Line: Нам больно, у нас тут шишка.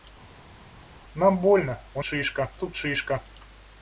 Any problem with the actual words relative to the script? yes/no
yes